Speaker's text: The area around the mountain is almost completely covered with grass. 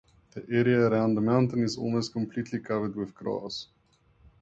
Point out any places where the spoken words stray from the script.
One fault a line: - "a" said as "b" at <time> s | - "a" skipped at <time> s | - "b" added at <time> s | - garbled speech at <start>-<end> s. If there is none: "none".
none